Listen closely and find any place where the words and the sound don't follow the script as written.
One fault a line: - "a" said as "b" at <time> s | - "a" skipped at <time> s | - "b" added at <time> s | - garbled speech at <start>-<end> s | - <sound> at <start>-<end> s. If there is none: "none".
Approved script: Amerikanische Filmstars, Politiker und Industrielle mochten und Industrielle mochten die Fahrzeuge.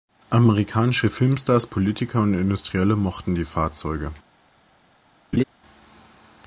- "und Industrielle mochten" skipped at 3.4 s
- laugh at 5.3-5.4 s